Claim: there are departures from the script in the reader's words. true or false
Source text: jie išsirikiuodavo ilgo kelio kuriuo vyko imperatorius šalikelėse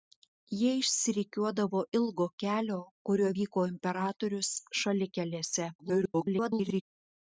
true